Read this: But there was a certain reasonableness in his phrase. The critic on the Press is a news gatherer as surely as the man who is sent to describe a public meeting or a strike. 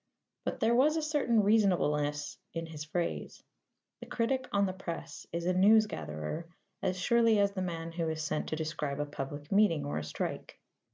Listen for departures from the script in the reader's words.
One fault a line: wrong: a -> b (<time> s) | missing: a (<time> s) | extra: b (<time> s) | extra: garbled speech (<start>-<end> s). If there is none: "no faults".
no faults